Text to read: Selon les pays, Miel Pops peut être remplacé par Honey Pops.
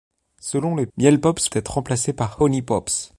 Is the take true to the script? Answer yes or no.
no